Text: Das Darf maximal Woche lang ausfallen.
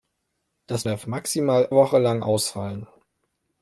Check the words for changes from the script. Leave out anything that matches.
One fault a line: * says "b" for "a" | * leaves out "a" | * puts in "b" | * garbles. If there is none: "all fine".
all fine